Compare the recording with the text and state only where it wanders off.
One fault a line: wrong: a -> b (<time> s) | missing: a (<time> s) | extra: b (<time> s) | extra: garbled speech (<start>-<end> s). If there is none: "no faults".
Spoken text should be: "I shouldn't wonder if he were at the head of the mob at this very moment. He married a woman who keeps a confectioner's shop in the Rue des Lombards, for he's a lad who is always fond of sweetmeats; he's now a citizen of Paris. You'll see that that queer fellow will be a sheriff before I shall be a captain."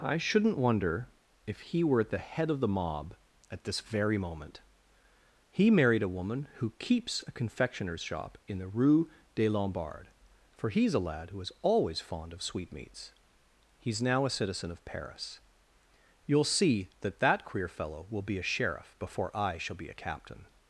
no faults